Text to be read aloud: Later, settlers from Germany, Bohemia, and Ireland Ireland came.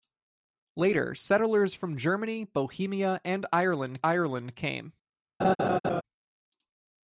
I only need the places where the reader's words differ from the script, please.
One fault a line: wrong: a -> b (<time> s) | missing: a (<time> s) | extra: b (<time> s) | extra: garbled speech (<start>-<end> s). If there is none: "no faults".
no faults